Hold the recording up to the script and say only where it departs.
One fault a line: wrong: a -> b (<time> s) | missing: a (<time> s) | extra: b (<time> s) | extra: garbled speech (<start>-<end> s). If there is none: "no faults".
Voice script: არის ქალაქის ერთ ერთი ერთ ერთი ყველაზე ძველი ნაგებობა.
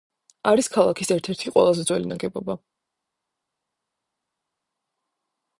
missing: ერთ ერთი (1.6 s)